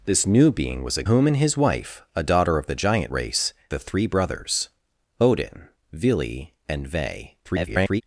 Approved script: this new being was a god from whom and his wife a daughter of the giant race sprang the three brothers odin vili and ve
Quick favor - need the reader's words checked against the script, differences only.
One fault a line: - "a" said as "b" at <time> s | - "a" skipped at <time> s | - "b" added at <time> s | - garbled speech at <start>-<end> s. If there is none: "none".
- "god from" skipped at 1.0 s
- "sprang" skipped at 3.5 s
- garbled speech at 7.4-8.0 s